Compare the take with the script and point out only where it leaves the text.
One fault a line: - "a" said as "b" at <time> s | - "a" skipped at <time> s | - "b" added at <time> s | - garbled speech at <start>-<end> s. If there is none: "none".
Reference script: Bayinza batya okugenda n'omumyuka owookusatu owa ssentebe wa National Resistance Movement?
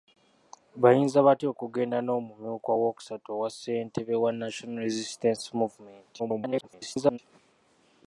- garbled speech at 6.2-7.2 s